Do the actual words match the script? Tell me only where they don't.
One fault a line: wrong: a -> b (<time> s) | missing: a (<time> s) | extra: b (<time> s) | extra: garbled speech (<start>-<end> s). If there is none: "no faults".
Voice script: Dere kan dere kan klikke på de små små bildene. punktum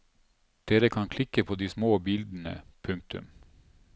missing: dere kan (1.1 s)
missing: små (2.0 s)